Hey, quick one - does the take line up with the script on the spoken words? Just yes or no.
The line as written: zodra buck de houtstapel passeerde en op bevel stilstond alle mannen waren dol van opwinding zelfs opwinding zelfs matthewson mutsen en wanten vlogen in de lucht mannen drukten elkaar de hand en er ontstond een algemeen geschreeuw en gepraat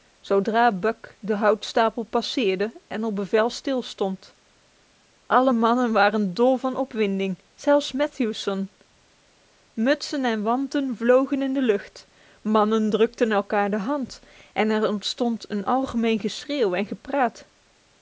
no